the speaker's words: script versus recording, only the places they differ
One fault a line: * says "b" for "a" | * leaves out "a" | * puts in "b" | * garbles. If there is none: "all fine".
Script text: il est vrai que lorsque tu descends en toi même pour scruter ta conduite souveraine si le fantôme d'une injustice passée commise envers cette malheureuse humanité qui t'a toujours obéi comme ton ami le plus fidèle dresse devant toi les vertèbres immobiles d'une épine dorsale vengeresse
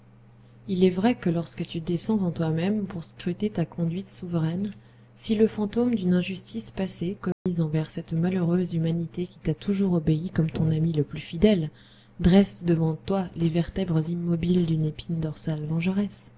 all fine